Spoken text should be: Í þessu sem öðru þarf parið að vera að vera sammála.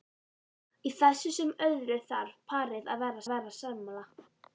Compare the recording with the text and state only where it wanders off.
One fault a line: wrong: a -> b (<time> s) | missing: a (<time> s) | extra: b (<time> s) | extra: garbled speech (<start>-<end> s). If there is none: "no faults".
no faults